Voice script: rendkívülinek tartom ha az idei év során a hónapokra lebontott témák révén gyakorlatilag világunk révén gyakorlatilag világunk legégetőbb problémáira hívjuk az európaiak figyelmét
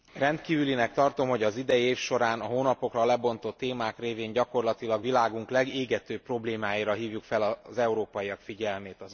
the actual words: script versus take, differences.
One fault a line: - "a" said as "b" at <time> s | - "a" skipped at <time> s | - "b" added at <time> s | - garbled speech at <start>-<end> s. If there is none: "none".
- "ha" said as "hogy" at 1.3 s
- "révén gyakorlatilag világunk" skipped at 5.5 s
- "fel" added at 7.2 s